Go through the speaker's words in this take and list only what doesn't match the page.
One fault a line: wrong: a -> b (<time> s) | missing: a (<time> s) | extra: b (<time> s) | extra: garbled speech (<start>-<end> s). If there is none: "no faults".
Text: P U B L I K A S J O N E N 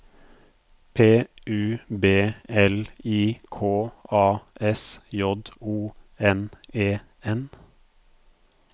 no faults